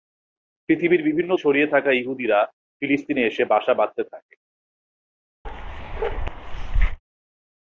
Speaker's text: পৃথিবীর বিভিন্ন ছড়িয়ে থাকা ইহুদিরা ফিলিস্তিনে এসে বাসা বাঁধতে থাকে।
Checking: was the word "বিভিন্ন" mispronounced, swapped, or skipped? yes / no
no